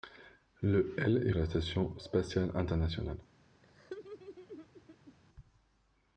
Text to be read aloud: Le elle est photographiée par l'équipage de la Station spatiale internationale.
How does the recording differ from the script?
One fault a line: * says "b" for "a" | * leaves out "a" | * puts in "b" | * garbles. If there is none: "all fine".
* leaves out "photographiée par l'équipage"